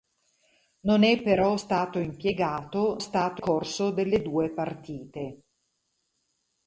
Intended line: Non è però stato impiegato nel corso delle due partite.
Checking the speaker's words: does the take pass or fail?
fail